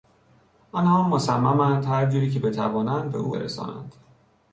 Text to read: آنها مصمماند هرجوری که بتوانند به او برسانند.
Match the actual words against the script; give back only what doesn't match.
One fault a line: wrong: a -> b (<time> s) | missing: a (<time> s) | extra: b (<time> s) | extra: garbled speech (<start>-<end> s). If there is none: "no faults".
no faults